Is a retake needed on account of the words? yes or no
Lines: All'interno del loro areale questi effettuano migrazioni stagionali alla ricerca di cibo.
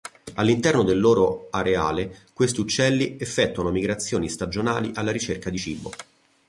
yes